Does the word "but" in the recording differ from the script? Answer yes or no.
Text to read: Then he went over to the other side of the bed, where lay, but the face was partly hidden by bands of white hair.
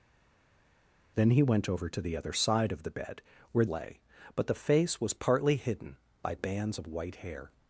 no